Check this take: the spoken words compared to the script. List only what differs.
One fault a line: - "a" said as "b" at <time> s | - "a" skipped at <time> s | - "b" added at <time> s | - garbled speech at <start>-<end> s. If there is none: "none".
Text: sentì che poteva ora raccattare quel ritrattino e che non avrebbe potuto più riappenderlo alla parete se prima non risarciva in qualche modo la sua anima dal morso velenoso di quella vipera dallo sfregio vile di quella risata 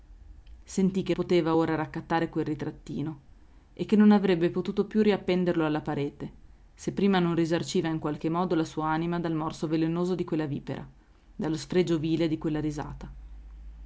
none